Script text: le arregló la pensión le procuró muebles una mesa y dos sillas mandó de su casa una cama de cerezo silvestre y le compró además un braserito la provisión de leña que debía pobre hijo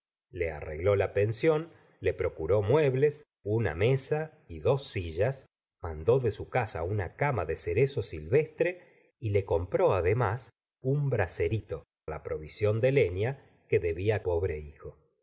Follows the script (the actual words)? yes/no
yes